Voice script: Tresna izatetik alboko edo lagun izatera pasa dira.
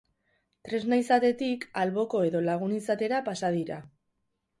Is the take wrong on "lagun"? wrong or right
right